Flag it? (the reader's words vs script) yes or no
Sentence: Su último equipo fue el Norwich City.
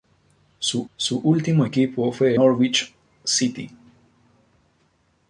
yes